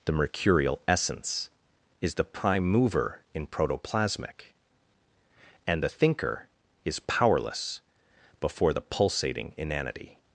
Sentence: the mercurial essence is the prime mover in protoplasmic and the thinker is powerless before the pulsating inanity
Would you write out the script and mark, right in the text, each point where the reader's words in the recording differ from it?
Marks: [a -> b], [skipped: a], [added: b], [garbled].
the mercurial essence is the prime mover in protoplasmic and the thinker is powerless before the pulsating inanity